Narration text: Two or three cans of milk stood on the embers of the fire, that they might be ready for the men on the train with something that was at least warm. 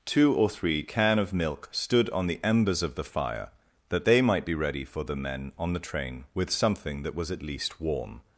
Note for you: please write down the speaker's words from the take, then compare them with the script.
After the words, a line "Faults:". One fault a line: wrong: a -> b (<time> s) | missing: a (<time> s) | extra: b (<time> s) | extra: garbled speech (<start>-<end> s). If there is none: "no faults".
Two or three can of milk stood on the embers of the fire, that they might be ready for the men on the train with something that was at least warm.
Faults:
wrong: cans -> can (0.8 s)